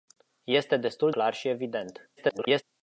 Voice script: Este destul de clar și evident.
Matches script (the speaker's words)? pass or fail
fail